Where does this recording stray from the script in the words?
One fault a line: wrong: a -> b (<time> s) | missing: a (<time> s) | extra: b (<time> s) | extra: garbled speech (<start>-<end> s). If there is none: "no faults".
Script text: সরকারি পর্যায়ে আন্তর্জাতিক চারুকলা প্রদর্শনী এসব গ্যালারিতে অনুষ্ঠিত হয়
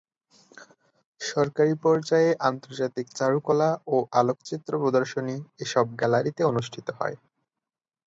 extra: ও আলোকচিত্র (3.9 s)